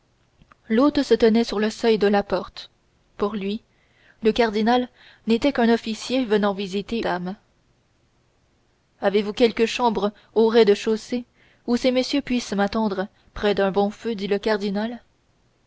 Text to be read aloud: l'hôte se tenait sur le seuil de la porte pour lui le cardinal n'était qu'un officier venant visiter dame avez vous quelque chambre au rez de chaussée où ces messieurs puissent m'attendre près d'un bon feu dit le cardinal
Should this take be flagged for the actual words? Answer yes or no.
no